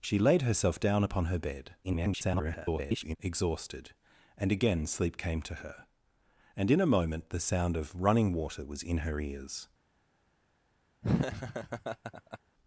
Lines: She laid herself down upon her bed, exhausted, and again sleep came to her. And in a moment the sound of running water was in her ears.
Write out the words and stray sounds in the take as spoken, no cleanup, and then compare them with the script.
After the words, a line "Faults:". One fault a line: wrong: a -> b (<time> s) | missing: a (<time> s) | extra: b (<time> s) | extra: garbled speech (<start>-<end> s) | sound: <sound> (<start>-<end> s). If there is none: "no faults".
She laid herself down upon her bed, [garbled] exhausted, and again sleep came to her. And in a moment the sound of running water was in her ears.
Faults:
extra: garbled speech (1.8-3.2 s)
sound: laugh (11.0-12.4 s)